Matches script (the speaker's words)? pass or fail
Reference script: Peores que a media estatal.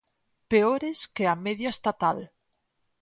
pass